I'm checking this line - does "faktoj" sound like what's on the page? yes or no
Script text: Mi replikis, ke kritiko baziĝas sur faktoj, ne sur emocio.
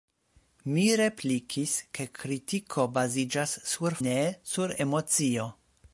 no